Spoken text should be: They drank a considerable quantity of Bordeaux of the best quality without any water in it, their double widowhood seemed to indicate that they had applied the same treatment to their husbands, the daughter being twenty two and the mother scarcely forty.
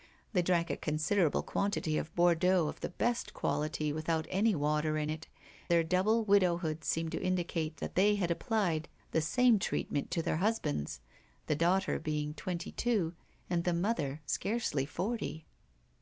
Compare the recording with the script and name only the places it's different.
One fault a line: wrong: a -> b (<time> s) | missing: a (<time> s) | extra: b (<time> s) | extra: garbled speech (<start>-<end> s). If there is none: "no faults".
no faults